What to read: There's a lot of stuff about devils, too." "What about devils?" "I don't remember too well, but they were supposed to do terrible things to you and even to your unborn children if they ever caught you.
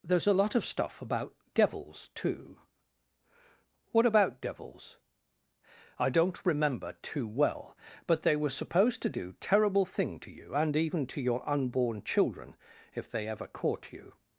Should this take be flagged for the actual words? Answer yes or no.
yes